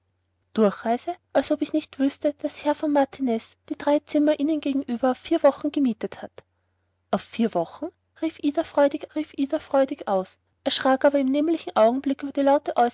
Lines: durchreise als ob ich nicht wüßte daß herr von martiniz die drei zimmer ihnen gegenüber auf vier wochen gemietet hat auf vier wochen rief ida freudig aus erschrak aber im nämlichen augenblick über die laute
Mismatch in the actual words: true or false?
true